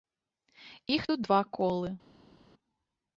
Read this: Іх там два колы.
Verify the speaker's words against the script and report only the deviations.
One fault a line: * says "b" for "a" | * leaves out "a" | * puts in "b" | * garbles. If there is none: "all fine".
* says "тут" for "там"